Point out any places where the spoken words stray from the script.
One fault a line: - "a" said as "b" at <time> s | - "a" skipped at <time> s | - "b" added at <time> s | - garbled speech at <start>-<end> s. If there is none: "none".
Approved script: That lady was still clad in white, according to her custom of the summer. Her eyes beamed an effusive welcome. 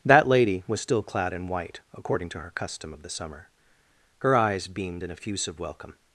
none